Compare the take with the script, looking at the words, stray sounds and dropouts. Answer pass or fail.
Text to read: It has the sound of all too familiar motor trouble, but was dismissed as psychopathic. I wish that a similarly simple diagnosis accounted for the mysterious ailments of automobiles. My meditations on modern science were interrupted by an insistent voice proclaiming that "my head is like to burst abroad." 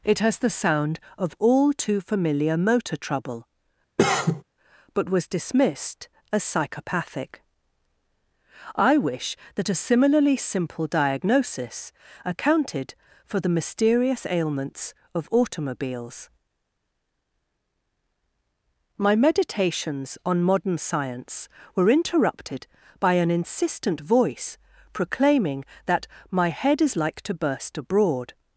fail